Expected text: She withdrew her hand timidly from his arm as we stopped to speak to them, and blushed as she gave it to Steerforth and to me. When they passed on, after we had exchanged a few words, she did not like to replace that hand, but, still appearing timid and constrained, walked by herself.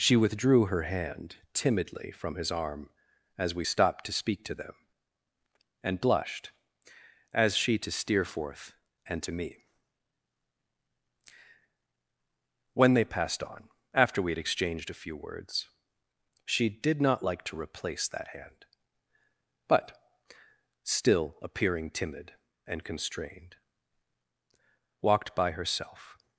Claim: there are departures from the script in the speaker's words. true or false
true